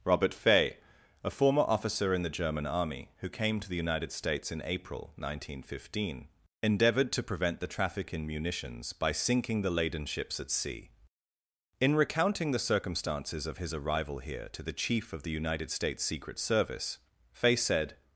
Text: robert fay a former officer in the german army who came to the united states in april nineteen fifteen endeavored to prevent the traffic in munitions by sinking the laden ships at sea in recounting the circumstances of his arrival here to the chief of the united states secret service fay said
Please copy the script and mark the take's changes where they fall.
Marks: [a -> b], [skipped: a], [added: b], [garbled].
robert fay a former officer in the german army who came to the united states in april nineteen fifteen endeavored to prevent the traffic in munitions by sinking the laden ships at sea in recounting the circumstances of his arrival here to the chief of the united states secret service fay said